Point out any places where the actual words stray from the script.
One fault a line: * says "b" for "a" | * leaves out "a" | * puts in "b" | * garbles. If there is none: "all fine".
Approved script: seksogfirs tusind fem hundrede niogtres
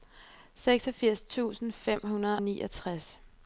all fine